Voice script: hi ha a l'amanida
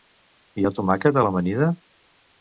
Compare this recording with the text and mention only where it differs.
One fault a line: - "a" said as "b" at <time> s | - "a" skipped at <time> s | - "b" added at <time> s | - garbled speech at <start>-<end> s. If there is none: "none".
- "tomàquet" added at 0.8 s